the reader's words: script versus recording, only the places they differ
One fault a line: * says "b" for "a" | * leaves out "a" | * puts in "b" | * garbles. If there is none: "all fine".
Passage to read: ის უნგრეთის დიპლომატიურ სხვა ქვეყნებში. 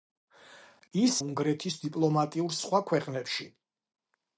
all fine